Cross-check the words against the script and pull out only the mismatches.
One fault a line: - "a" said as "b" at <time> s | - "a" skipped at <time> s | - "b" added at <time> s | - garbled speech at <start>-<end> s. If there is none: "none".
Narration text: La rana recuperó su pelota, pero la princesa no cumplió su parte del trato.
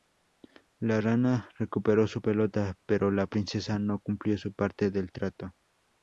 none